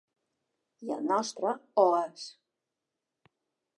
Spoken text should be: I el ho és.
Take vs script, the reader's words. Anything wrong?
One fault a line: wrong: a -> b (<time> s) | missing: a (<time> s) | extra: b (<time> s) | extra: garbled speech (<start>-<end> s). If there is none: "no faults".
extra: nostre (1.1 s)